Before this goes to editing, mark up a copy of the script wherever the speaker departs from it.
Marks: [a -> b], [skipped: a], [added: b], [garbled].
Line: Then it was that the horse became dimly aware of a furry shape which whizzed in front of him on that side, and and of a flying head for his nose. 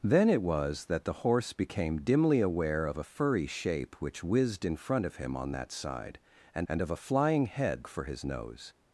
Then it was that the horse became dimly aware of a furry shape which whizzed in front of him on that side, and and of a flying head for his nose.